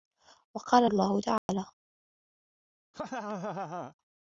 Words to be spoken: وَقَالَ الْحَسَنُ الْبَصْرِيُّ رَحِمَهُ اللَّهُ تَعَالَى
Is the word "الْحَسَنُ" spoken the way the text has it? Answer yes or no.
no